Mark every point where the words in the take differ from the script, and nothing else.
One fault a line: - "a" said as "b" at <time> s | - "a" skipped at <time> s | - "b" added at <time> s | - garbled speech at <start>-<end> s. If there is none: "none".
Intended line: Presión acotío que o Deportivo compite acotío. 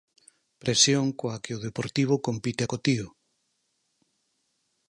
- "acotío" said as "coa" at 1.2 s